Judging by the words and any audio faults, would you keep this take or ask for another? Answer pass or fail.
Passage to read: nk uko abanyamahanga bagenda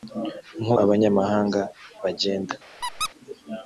fail